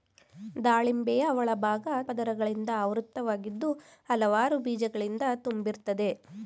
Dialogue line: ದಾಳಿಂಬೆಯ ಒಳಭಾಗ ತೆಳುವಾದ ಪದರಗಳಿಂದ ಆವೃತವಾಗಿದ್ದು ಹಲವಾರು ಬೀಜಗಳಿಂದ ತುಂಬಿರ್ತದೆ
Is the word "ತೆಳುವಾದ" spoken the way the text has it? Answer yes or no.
no